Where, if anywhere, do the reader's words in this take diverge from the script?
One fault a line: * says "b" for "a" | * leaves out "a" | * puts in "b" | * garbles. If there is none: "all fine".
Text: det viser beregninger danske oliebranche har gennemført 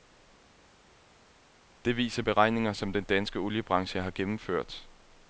* puts in "som den"